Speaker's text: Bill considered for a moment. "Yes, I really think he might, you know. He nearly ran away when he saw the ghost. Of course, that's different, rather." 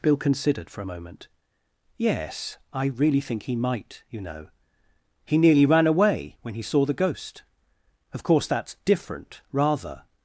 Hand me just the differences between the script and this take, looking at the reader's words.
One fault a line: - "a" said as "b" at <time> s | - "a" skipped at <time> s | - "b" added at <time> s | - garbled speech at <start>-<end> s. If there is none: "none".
none